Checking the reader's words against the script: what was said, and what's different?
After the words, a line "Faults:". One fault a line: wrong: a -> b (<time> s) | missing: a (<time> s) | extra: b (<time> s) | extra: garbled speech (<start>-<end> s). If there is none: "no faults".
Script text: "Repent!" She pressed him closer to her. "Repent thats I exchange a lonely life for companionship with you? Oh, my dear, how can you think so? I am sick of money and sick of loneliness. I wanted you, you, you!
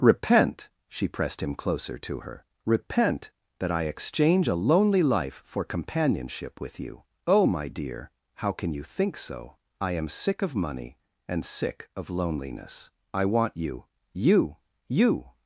"Repent!" She pressed him closer to her. "Repent that I exchange a lonely life for companionship with you? Oh, my dear, how can you think so? I am sick of money and sick of loneliness. I want you, you, you!
Faults:
wrong: thats -> that (3.6 s)
wrong: wanted -> want (13.2 s)